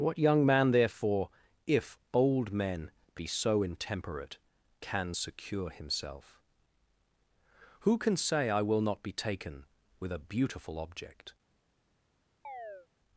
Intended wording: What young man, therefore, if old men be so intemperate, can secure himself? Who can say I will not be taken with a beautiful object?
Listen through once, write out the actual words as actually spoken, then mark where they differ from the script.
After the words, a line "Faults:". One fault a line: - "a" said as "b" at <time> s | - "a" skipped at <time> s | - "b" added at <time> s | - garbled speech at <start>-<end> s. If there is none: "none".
What young man, therefore, if old men be so intemperate, can secure himself? Who can say I will not be taken with a beautiful object?
Faults:
none